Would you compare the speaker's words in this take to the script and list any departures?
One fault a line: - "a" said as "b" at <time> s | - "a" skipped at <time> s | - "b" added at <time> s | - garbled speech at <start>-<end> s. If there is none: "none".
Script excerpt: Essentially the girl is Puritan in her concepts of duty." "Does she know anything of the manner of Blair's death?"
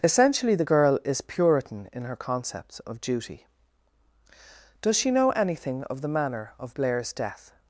none